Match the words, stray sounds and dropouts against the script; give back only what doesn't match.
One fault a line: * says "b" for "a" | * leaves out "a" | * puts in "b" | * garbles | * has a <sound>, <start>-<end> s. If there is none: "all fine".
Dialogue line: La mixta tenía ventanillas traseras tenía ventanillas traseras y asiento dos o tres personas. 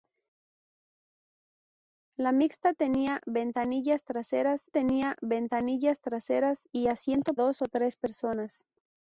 all fine